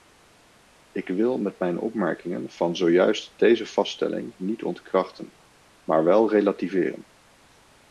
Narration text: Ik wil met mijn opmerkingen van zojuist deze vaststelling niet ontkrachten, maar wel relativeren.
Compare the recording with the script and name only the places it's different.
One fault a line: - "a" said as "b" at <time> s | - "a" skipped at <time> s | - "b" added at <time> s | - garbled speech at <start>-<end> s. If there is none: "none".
none